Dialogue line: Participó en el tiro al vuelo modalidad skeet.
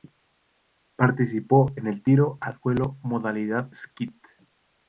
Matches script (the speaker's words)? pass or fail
pass